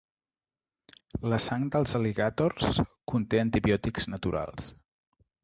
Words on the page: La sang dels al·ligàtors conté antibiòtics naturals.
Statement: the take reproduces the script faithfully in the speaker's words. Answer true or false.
true